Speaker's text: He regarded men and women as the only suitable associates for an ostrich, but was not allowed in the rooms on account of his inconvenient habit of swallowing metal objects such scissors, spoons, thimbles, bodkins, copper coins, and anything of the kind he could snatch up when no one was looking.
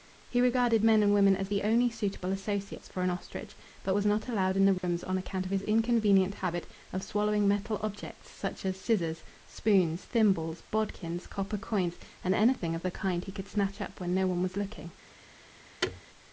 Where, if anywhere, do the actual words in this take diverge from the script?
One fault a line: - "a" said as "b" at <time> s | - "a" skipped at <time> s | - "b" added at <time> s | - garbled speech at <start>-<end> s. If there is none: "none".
- "as" added at 8.7 s